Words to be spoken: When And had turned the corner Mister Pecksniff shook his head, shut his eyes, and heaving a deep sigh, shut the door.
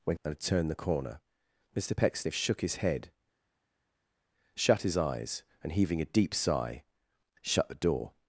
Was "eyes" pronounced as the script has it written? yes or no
yes